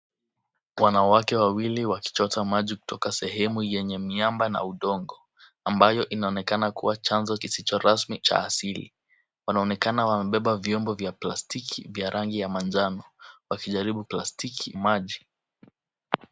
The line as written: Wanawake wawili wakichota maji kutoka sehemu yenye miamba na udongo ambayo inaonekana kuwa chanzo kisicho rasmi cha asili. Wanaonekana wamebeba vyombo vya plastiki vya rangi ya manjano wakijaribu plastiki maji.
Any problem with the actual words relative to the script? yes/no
no